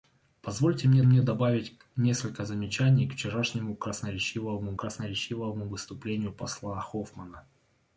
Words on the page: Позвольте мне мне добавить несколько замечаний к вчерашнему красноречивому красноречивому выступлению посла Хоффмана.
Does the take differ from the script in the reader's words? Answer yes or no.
no